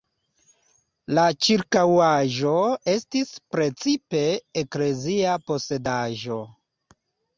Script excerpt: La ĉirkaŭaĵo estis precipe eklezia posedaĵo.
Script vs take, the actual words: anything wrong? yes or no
no